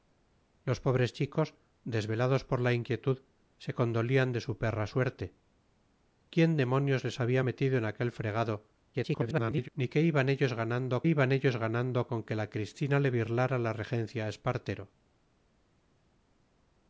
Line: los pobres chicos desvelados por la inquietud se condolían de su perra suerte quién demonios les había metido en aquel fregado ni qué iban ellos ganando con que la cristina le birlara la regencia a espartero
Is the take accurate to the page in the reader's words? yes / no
no